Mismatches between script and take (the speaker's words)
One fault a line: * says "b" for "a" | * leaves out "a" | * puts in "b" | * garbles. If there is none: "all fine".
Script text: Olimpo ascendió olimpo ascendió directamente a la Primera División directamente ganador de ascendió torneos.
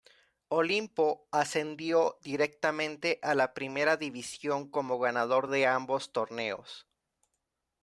* leaves out "olimpo ascendió"
* says "como" for "directamente"
* says "ambos" for "ascendió"